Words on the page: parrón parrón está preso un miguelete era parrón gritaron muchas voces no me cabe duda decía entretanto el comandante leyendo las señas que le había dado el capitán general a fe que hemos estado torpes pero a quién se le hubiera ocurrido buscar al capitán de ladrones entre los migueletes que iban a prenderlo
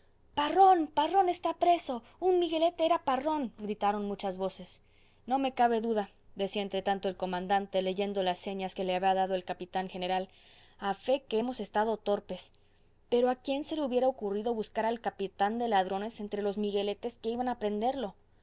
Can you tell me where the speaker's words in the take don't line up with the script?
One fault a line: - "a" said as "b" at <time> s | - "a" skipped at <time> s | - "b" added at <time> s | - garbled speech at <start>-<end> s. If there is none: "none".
none